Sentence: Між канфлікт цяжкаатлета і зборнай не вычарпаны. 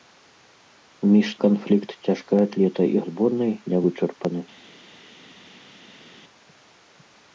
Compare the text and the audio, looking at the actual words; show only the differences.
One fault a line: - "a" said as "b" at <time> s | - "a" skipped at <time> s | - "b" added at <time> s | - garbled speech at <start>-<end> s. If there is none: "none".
none